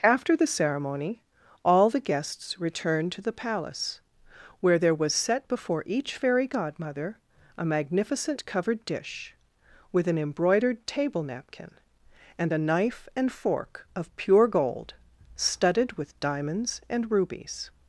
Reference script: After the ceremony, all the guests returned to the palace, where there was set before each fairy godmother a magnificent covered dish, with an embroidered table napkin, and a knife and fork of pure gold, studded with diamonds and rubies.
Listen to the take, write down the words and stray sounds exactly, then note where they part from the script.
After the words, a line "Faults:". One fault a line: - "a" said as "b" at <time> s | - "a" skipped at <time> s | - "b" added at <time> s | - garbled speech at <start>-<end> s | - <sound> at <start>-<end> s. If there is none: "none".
After the ceremony, all the guests returned to the palace, where there was set before each fairy godmother a magnificent covered dish, with an embroidered table napkin, and a knife and fork of pure gold, studded with diamonds and rubies.
Faults:
none